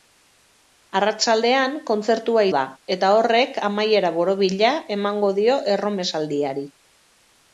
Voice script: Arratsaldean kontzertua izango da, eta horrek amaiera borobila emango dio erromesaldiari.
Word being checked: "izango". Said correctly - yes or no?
no